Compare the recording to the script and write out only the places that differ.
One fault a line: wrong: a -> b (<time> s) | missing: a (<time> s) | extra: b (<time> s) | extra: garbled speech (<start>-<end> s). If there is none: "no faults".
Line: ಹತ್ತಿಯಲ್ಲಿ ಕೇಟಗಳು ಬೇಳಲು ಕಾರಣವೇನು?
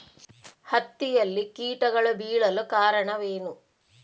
no faults